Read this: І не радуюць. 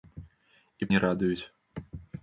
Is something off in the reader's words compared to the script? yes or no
no